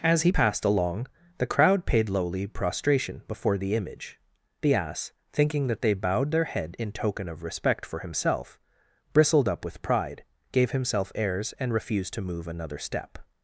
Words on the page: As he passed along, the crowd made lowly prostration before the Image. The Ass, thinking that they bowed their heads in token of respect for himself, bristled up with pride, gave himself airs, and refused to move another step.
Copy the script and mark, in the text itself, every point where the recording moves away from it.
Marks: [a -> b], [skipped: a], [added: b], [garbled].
As he passed along, the crowd [made -> paid] lowly prostration before the Image. The Ass, thinking that they bowed their [heads -> head] in token of respect for himself, bristled up with pride, gave himself airs, and refused to move another step.